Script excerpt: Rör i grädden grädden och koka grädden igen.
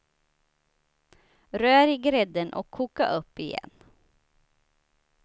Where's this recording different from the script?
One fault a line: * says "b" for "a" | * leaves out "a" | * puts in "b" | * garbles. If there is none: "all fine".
* leaves out "grädden"
* says "upp" for "grädden"